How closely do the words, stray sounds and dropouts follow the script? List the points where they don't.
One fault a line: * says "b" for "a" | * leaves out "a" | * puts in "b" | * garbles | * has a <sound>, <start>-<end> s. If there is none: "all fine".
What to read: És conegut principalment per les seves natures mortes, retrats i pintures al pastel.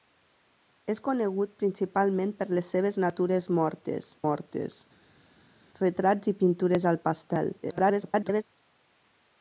* puts in "mortes"
* garbles